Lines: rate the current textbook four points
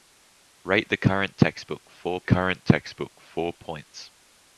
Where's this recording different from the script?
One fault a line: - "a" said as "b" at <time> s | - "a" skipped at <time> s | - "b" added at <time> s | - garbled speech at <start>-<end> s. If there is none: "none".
- "current textbook four" added at 2.2 s